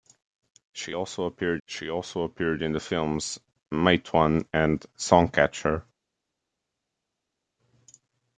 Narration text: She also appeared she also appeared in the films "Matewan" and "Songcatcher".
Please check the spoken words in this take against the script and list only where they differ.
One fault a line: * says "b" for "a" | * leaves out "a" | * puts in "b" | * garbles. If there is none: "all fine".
all fine